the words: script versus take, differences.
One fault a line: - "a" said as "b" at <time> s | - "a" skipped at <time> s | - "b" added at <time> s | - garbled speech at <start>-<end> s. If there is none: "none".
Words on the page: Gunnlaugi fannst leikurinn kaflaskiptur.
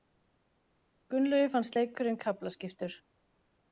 none